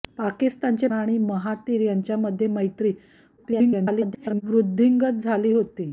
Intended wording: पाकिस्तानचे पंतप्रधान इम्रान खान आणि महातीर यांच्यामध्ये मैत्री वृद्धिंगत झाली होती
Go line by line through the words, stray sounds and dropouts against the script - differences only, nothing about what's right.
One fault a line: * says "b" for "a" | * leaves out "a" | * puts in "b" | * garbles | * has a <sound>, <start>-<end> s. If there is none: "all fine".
* leaves out "पंतप्रधान इम्रान खान"
* garbles